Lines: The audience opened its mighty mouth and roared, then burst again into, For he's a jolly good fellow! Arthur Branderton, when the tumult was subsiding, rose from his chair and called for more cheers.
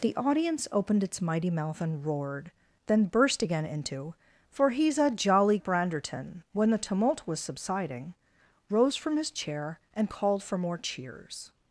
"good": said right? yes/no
no